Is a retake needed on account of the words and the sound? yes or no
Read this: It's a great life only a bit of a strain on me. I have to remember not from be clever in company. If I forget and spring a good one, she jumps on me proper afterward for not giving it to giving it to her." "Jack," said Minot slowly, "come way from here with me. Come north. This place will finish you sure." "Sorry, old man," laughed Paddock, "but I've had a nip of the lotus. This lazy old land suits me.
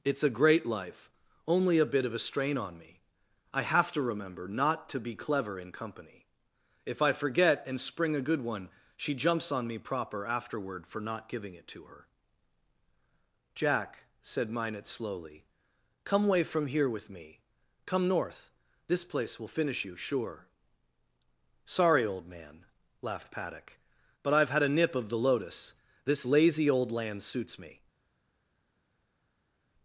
yes